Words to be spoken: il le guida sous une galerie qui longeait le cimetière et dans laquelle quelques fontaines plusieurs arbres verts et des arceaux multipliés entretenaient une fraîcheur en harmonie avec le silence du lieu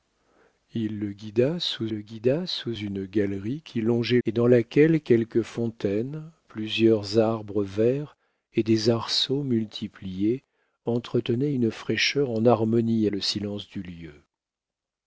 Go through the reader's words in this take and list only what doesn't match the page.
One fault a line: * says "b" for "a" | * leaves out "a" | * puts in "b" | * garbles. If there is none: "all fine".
* puts in "le guida sous"
* leaves out "le cimetière"
* leaves out "avec"